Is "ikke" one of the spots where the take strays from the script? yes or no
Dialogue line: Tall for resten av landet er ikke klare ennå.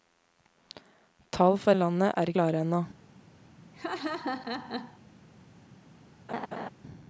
yes